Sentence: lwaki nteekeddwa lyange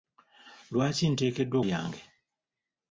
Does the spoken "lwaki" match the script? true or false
true